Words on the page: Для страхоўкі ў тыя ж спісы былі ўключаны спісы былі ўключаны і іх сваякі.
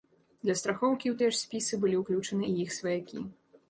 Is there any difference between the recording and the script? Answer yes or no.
yes